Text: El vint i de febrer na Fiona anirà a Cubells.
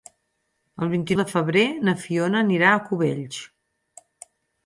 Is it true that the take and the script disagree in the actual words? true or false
false